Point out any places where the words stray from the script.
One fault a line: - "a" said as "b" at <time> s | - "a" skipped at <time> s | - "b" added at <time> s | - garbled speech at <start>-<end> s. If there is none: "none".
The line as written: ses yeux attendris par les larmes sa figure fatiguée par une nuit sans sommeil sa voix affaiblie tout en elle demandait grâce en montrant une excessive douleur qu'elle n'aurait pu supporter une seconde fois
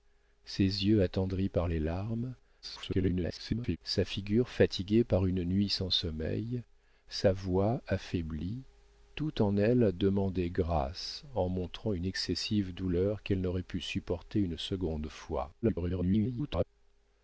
- garbled speech at 2.6-3.8 s
- garbled speech at 15.6-16.6 s